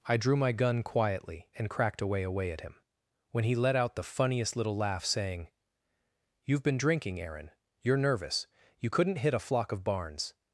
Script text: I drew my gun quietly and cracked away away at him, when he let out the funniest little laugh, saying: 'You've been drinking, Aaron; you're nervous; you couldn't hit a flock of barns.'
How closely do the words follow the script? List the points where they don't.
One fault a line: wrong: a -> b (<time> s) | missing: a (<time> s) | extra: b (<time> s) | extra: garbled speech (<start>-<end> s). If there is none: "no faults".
no faults